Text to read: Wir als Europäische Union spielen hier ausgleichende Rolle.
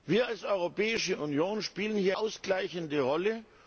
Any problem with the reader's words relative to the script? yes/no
no